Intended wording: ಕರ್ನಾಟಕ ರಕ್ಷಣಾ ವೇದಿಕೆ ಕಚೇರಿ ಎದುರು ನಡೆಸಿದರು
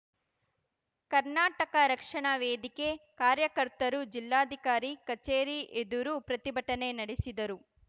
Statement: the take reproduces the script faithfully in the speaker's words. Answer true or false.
false